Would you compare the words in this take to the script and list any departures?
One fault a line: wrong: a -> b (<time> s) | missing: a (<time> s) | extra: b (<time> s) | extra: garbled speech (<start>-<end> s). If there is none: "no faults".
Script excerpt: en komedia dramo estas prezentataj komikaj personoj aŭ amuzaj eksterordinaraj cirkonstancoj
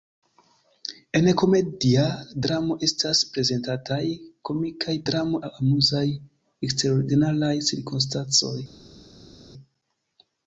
wrong: personoj -> dramo (5.1 s)